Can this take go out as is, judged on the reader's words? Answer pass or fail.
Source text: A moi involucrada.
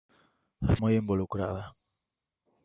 pass